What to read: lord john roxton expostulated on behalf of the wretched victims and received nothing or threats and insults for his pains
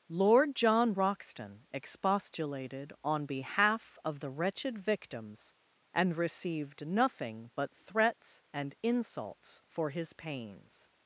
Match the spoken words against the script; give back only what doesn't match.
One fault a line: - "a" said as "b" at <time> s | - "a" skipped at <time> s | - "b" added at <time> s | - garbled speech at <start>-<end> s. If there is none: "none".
- "or" said as "but" at 7.5 s